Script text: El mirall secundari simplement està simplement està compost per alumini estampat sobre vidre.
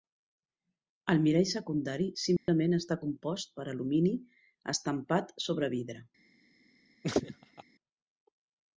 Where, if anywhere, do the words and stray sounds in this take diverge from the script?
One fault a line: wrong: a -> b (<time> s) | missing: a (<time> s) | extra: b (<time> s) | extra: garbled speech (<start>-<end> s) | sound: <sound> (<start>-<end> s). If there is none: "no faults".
sound: dropout (2.4-2.5 s)
missing: simplement està (3.0 s)
sound: laugh (7.0-7.6 s)